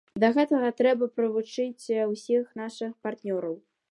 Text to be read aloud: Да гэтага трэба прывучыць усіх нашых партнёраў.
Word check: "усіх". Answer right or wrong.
right